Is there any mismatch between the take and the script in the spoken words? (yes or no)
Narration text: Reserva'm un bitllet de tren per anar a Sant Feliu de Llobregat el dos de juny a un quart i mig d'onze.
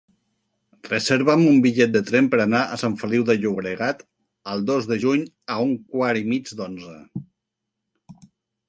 no